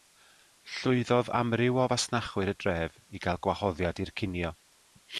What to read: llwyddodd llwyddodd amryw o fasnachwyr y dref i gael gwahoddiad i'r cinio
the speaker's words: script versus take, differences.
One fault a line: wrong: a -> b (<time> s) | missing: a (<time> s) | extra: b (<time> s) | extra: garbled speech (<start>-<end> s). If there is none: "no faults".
missing: llwyddodd (1.3 s)